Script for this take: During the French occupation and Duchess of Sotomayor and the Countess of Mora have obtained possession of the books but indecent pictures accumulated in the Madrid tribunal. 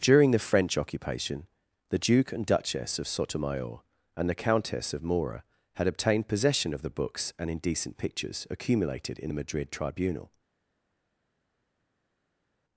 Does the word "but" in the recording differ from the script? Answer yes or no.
yes